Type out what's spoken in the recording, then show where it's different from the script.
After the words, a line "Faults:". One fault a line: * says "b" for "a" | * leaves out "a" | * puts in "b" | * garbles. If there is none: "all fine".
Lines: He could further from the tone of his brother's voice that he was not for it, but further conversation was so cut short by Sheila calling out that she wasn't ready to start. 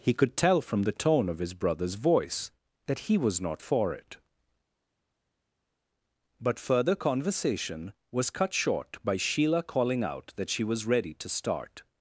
He could tell from the tone of his brother's voice that he was not for it, but further conversation was cut short by Sheila calling out that she was ready to start.
Faults:
* says "tell" for "further"
* leaves out "so"
* says "was" for "wasn't"